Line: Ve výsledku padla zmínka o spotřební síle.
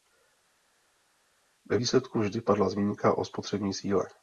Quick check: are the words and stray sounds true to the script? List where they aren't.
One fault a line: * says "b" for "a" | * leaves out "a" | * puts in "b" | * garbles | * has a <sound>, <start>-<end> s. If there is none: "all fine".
* puts in "vždy"